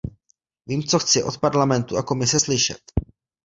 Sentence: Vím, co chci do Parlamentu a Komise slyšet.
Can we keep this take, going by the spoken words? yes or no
no